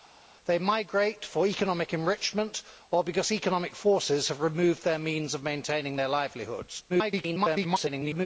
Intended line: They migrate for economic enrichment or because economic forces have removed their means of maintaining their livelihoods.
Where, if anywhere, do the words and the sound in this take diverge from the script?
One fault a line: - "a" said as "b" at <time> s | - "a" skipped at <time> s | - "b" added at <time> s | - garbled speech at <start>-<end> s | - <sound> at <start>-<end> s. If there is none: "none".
- garbled speech at 6.9-8.3 s